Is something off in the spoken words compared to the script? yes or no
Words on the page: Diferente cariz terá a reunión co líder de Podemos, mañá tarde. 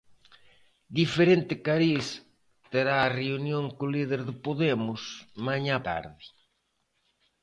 no